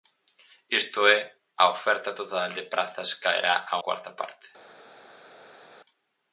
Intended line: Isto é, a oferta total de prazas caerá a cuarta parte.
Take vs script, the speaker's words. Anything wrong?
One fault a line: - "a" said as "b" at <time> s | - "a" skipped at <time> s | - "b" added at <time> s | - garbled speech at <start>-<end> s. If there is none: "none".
none